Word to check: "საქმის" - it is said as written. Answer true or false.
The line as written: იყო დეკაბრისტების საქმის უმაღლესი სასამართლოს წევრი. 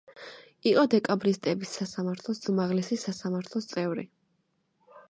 false